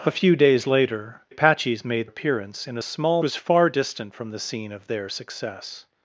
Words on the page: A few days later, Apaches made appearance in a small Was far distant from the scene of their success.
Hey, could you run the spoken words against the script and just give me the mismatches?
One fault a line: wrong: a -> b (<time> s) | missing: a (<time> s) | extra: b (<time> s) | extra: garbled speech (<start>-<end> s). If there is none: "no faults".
no faults